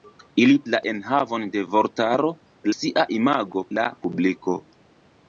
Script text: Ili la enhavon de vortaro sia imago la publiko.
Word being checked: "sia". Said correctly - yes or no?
yes